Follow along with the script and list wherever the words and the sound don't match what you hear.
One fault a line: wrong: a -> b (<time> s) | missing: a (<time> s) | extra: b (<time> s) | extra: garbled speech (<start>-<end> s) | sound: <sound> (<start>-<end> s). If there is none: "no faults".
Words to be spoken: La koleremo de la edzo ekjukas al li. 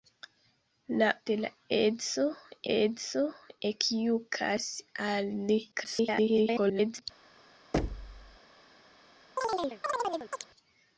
missing: koleremo (1.1 s)
extra: edzo (2.8 s)
extra: garbled speech (5.7-7.0 s)
sound: thud (7.7-8.4 s)
sound: chirp (9.4-10.4 s)